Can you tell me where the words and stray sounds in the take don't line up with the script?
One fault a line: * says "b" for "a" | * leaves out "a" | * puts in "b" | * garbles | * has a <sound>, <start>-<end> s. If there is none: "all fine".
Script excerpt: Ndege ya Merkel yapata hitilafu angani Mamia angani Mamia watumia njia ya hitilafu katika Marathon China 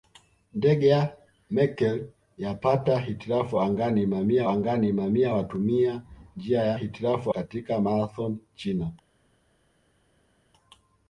all fine